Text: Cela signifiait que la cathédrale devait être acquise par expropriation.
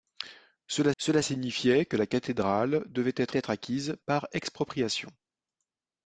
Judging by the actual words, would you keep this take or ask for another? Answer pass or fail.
fail